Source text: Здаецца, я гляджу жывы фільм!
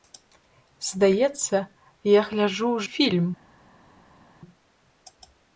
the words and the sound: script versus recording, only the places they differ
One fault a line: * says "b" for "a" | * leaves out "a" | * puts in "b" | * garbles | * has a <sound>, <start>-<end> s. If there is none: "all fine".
* leaves out "жывы"